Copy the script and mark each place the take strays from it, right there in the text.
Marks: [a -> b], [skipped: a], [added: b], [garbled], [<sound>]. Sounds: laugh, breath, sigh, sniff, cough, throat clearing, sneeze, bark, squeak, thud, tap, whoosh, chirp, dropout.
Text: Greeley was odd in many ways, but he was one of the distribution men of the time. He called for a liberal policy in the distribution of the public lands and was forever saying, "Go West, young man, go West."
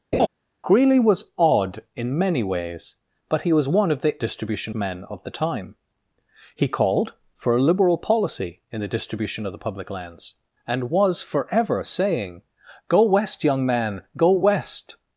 [laugh] Greeley was odd in many ways, but he was one of the distribution men of the time. He called for a liberal policy in the distribution of the public lands and was forever saying, "Go West, young man, go West."